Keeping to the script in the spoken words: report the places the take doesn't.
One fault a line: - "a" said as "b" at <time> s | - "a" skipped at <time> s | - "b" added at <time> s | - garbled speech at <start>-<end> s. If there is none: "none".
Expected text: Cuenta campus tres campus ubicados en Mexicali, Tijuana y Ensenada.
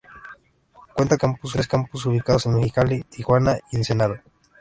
none